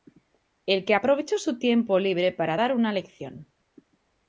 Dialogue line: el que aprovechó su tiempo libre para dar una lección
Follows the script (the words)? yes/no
yes